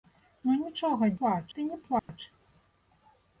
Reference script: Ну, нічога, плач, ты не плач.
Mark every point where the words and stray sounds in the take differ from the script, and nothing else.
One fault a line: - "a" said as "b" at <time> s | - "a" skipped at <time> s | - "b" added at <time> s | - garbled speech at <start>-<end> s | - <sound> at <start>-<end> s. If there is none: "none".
- dropout at 2.0-2.1 s